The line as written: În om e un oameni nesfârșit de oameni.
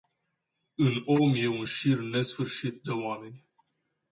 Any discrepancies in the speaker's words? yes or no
yes